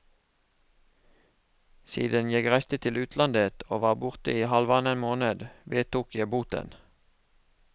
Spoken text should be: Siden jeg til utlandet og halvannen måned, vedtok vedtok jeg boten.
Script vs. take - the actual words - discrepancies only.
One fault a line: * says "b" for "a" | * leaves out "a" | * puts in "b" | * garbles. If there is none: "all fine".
* puts in "reiste"
* puts in "var borte i"
* leaves out "vedtok"